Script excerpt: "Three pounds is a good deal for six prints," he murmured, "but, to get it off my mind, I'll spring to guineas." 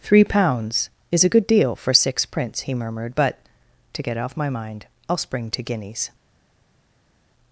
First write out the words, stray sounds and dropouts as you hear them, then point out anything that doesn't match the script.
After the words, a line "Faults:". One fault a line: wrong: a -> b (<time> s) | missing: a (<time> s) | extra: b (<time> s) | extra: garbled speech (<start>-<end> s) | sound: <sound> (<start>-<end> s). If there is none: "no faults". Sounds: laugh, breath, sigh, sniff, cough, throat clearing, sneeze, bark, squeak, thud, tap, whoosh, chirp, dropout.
"Three pounds is a good deal for six prints," he murmured, "but, to get off my mind, I'll spring to guineas."
Faults:
missing: it (4.2 s)